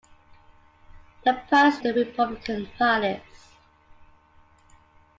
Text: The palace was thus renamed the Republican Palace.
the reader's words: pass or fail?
fail